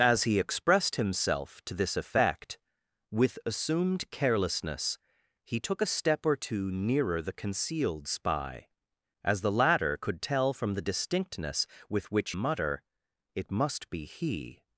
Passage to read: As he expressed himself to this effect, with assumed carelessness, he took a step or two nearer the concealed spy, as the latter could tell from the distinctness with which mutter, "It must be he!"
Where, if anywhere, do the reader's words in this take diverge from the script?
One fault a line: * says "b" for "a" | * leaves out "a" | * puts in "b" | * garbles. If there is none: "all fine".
all fine